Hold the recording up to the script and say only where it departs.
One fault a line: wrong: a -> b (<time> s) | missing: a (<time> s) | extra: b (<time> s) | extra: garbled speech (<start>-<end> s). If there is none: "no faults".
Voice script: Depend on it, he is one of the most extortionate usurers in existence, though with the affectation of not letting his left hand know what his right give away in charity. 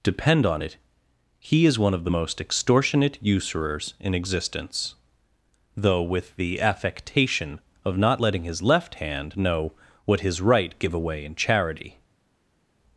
no faults